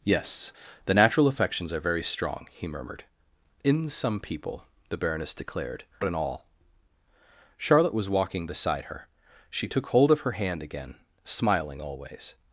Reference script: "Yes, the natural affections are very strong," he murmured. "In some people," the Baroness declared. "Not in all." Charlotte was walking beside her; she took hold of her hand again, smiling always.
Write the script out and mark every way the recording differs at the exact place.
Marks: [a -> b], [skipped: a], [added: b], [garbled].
"Yes, the natural affections are very strong," he murmured. "In some people," the Baroness declared. [skipped: "Not] in all." Charlotte was walking beside her; she took hold of her hand again, smiling always.